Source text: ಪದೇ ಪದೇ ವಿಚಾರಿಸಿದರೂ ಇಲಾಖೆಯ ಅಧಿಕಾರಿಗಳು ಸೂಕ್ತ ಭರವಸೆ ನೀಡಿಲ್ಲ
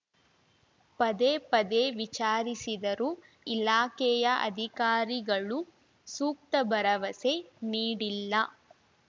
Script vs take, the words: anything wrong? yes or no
no